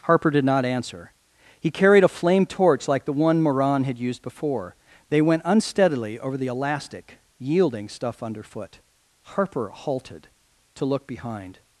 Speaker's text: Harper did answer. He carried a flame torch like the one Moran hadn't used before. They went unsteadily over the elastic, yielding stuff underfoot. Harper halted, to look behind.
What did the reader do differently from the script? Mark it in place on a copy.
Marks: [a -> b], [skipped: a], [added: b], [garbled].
Harper did [added: not] answer. He carried a flame torch like the one Moran [hadn't -> had] used before. They went unsteadily over the elastic, yielding stuff underfoot. Harper halted, to look behind.